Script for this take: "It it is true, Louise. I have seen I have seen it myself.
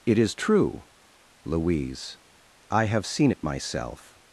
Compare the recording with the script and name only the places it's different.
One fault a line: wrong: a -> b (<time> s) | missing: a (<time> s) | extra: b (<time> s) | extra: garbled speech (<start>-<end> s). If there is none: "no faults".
missing: it (0.2 s)
missing: I have seen (3.3 s)